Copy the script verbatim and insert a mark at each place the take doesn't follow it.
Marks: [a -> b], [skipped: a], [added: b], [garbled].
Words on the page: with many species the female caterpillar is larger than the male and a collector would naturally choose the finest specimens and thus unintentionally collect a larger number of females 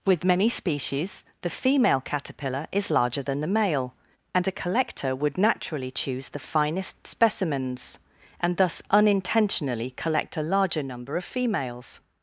with many species the female caterpillar is larger than the male and a collector would naturally choose the finest specimens and thus unintentionally collect a larger number of females